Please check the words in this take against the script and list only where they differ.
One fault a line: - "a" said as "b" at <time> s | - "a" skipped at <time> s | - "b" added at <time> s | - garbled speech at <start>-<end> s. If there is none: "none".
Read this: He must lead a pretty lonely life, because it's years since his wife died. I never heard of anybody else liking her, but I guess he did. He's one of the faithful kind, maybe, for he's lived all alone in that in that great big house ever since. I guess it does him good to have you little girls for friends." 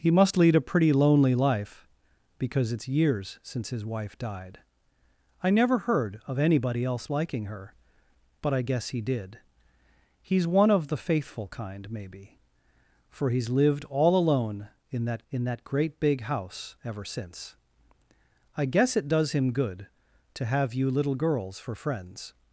none